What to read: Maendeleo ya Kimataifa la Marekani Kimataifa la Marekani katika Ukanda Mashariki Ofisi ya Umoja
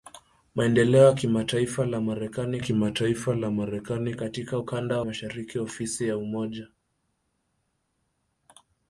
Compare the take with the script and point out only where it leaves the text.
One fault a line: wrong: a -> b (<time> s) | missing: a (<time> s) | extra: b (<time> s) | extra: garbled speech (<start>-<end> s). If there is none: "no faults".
no faults